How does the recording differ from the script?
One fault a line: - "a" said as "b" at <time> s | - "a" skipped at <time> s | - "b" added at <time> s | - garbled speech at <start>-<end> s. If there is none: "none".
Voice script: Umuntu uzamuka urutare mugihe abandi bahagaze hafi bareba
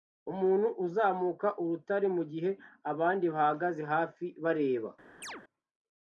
none